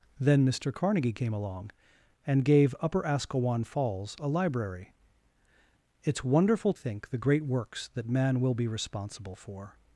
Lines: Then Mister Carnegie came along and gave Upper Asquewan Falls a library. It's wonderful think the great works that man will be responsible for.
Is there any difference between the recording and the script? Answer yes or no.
no